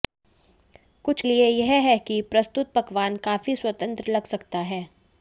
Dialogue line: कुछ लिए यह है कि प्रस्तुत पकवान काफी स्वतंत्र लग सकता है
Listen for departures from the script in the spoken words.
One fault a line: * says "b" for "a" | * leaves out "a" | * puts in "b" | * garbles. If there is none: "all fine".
all fine